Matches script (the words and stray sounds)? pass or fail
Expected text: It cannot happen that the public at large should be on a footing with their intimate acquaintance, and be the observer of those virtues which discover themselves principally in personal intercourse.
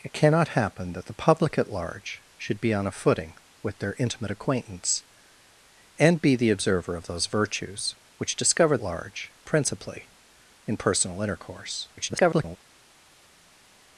fail